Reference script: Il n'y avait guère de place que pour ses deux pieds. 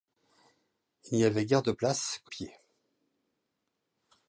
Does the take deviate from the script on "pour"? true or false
true